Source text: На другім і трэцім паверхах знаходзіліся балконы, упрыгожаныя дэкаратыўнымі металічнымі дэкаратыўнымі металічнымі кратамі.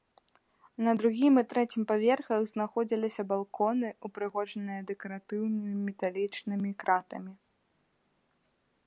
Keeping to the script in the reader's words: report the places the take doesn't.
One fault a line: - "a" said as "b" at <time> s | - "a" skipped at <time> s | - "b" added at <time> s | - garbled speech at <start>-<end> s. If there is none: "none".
- "дэкаратыўнымі металічнымі" skipped at 6.7 s